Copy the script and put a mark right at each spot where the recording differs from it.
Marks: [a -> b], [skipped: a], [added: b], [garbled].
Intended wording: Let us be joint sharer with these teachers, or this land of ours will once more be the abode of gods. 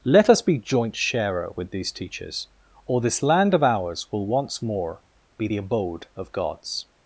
Let us be joint sharer with these teachers, or this land of ours will once more be the abode of gods.